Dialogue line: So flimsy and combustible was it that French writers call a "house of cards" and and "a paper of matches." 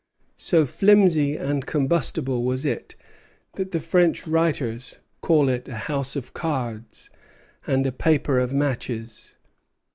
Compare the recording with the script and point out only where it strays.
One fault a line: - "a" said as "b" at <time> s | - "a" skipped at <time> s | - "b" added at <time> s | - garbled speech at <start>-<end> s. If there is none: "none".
- "the" added at 3.7 s
- "it" added at 5.5 s
- "and" skipped at 7.8 s